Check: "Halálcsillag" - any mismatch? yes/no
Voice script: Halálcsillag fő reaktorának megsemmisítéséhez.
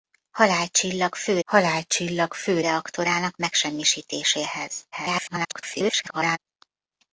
no